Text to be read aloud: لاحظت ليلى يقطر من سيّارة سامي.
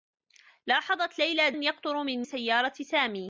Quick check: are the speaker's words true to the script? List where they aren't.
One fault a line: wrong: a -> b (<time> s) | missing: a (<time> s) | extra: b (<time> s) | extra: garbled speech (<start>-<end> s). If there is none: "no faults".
no faults